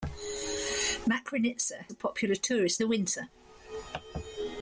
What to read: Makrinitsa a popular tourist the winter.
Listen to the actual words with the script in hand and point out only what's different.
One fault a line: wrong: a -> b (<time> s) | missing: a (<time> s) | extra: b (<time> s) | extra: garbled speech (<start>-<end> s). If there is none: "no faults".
no faults